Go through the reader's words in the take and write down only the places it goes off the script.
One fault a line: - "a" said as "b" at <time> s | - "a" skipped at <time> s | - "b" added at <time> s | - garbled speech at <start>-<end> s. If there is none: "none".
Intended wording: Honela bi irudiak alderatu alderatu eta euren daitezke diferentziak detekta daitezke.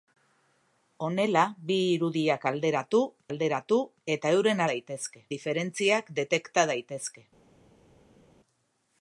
none